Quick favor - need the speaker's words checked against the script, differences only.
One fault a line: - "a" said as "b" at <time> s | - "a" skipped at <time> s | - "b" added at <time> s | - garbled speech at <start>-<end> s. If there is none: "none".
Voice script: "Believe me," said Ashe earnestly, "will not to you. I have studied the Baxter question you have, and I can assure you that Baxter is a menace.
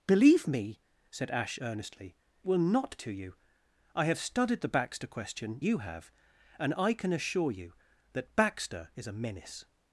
none